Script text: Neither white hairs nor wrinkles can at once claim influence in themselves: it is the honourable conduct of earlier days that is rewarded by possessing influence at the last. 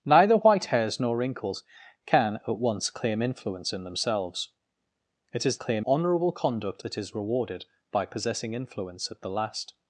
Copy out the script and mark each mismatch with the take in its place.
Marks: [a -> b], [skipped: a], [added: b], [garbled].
Neither white hairs nor wrinkles can at once claim influence in themselves: it is [the -> claim] honourable conduct [skipped: of earlier days] that is rewarded by possessing influence at the last.